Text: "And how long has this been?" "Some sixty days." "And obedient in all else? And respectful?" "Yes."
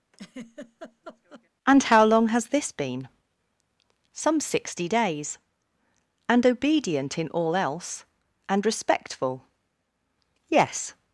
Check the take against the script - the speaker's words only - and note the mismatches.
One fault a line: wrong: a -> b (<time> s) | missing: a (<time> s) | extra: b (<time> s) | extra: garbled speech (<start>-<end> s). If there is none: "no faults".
no faults